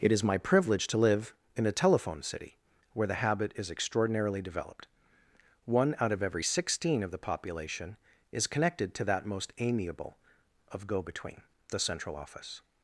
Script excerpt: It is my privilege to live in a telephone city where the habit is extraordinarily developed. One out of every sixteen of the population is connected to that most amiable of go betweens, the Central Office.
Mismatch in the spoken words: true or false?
true